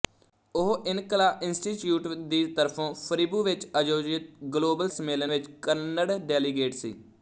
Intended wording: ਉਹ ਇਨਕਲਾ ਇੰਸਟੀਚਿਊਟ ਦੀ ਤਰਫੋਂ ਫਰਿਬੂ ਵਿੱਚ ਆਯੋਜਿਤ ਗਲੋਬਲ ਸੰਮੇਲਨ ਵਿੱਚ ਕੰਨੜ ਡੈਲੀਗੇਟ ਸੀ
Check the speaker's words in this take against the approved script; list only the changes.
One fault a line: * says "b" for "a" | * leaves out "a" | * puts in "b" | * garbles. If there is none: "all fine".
all fine